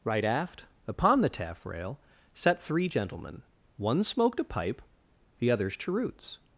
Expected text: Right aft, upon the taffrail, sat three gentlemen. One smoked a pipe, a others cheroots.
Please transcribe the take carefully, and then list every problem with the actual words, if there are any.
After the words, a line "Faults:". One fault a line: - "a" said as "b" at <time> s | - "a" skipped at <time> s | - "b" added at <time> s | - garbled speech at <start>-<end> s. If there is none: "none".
Right aft, upon the taffrail, sat three gentlemen. One smoked a pipe, the others cheroots.
Faults:
- "a" said as "the" at 5.4 s